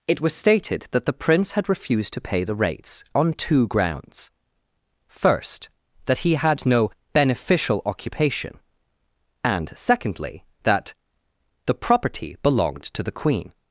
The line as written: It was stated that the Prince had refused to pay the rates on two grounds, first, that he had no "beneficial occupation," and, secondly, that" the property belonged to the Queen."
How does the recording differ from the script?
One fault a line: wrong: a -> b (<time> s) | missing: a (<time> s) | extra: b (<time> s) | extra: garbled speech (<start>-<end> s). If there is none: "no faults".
no faults